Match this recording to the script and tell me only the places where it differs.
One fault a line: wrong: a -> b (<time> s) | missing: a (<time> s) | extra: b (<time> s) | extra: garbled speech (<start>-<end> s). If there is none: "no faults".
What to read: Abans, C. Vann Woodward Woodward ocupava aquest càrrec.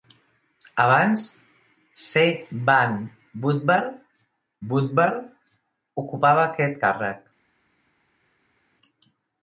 no faults